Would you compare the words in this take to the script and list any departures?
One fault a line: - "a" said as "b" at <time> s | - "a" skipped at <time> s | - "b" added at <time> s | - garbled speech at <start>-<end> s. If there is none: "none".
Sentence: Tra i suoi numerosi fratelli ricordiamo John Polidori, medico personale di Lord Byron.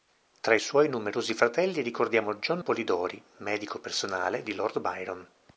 none